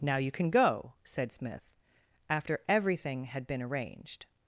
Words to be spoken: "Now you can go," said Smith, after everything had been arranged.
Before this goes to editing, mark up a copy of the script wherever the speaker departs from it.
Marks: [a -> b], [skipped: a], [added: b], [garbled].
"Now you can go," said Smith, after everything had been arranged.